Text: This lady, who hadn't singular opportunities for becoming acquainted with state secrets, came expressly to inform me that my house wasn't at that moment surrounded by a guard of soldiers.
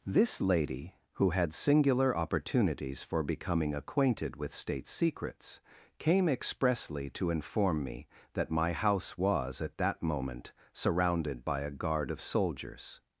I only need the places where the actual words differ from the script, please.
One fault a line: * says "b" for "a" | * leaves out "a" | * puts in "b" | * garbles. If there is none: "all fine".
* says "had" for "hadn't"
* says "was" for "wasn't"